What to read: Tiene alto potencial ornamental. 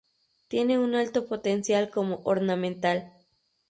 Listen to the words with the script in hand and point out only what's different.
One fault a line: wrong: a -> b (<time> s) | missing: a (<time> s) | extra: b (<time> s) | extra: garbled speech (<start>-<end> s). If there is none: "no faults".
extra: un (0.8 s)
extra: como (1.9 s)